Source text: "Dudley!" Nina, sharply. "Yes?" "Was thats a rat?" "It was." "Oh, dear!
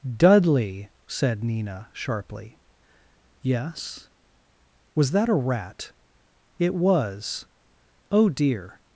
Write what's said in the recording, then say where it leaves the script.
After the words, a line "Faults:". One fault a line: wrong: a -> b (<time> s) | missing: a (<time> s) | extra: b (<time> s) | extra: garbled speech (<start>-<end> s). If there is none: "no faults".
"Dudley!" said Nina, sharply. "Yes?" "Was that a rat?" "It was." "Oh, dear!
Faults:
extra: said (1.1 s)
wrong: thats -> that (5.1 s)